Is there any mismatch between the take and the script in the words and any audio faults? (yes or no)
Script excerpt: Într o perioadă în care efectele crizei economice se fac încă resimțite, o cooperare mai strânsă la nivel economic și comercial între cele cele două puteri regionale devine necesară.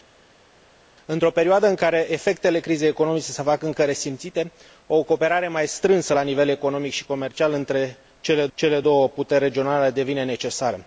no